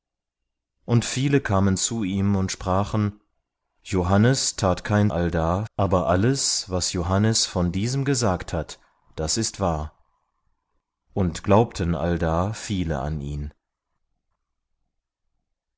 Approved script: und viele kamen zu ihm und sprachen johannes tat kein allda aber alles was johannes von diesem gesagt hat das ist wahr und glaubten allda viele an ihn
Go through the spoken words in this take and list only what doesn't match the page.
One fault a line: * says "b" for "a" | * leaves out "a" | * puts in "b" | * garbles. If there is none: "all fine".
all fine